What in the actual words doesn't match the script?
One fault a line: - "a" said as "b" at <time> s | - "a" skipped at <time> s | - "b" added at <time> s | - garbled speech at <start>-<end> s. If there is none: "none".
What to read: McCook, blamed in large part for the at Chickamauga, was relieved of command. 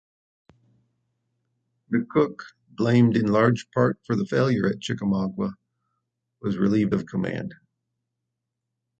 - "failure" added at 4.2 s